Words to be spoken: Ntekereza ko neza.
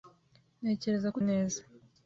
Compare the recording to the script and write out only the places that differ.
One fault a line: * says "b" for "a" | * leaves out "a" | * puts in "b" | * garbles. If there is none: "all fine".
all fine